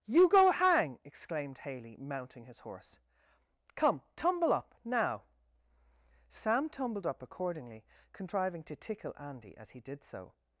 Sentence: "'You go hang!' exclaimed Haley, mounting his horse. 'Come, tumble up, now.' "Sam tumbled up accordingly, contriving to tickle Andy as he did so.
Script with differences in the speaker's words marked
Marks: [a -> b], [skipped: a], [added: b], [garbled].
"'You go hang!' exclaimed Haley, mounting his horse. 'Come, tumble up, now.' "Sam tumbled up accordingly, contriving to tickle Andy as he did so.